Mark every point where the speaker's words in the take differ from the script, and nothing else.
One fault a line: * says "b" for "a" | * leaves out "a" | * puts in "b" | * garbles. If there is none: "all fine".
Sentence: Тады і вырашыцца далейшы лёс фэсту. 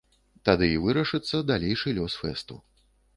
all fine